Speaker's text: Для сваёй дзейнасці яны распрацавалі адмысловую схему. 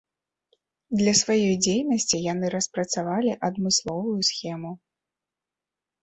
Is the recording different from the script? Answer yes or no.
no